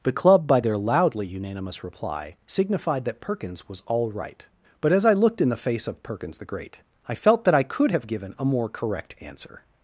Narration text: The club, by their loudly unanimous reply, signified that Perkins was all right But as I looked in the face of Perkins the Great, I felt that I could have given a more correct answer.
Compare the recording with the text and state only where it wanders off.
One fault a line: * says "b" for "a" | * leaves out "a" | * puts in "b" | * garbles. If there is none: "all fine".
all fine